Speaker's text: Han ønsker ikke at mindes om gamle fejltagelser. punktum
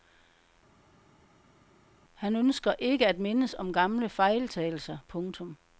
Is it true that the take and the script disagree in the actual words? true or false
false